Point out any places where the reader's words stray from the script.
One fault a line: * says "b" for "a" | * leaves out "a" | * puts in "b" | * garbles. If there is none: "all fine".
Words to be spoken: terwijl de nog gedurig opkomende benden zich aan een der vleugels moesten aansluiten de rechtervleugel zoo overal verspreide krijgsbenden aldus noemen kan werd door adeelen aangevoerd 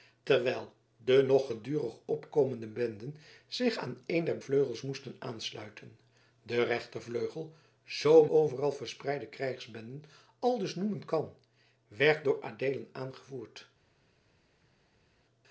all fine